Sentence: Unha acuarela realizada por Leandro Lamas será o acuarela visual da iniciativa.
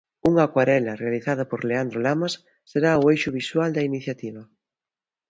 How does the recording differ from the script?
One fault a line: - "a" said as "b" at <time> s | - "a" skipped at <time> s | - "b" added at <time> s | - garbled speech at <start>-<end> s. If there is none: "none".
- "acuarela" said as "eixo" at 3.1 s